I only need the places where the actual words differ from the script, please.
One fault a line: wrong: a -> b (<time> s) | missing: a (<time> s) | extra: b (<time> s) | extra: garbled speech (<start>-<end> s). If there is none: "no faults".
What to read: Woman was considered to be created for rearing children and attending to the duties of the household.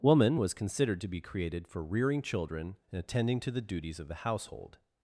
no faults